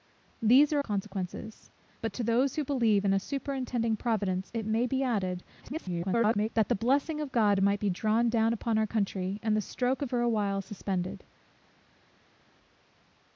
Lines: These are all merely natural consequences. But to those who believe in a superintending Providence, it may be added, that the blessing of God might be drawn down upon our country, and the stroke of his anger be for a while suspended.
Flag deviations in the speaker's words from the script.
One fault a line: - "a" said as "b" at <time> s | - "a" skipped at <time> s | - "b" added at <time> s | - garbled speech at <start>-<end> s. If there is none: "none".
- "all merely natural" skipped at 0.8 s
- garbled speech at 5.6-6.5 s
- "his anger be" skipped at 10.1 s